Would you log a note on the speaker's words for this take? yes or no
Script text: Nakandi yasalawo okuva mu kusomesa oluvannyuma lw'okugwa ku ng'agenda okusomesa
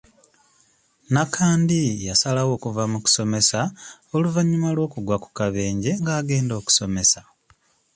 yes